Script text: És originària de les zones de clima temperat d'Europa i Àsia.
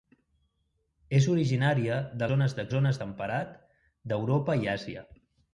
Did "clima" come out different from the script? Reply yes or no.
yes